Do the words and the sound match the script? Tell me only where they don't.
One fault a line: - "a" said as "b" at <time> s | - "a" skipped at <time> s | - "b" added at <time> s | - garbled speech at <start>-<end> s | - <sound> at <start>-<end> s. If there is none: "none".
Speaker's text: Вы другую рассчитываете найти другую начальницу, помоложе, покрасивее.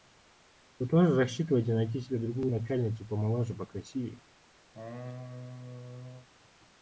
- "другую" said as "тоже" at 0.9 s
- "себе" added at 2.0 s
- laugh at 4.7-6.3 s